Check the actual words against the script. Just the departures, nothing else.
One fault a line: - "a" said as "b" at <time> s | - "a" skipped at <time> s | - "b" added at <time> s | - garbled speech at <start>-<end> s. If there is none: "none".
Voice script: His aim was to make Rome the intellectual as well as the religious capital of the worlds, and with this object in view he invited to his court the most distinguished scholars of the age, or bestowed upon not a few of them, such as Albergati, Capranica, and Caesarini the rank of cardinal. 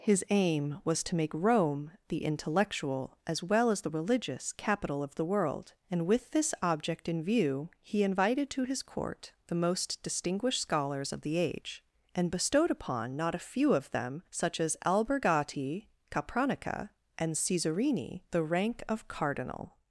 - "worlds" said as "world" at 5.2 s
- "or" said as "and" at 12.2 s